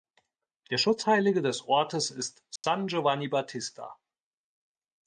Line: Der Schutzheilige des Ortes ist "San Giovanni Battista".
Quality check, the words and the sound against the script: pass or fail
fail